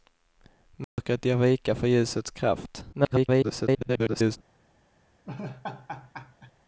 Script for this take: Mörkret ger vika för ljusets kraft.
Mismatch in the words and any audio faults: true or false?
true